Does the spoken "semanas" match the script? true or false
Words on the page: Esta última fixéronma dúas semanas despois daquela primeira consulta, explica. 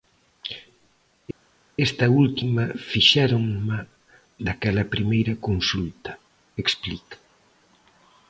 false